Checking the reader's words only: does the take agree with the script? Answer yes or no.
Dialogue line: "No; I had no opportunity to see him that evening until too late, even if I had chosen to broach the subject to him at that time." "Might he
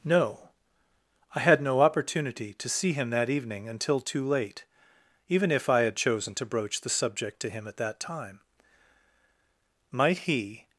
yes